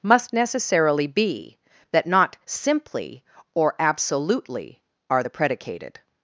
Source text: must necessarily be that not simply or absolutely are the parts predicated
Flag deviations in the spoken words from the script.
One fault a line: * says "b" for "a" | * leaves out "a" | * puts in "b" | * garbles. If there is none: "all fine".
* leaves out "parts"